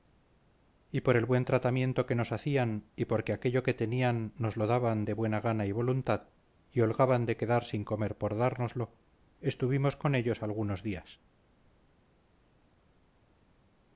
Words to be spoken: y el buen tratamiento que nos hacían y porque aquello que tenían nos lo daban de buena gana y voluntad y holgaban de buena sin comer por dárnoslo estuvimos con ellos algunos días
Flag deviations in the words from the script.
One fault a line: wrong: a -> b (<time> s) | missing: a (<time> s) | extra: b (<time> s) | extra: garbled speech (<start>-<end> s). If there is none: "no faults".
extra: por (1.0 s)
wrong: buena -> quedar (7.4 s)